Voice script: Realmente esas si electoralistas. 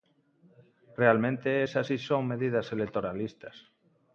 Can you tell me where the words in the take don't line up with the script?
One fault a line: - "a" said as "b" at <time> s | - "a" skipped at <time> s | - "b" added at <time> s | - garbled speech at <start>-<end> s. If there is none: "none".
- "son medidas" added at 2.0 s